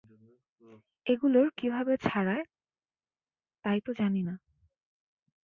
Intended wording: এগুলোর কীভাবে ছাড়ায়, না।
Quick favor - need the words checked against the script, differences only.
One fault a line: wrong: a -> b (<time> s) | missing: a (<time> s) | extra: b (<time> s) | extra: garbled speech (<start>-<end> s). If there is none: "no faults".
extra: তাই তো জানি (3.6 s)